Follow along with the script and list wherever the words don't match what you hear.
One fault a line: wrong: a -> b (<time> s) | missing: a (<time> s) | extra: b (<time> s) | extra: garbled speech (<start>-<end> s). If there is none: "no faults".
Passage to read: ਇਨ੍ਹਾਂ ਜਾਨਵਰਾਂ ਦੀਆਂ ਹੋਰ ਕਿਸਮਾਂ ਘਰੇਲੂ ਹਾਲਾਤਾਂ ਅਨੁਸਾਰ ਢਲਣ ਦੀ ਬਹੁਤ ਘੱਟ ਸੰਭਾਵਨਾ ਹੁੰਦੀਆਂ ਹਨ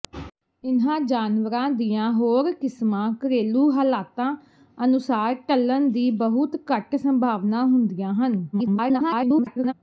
extra: garbled speech (8.5-9.7 s)